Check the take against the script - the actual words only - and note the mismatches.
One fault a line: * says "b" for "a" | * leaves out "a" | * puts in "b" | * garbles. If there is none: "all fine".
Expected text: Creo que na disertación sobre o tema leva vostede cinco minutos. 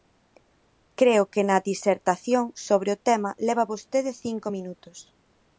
all fine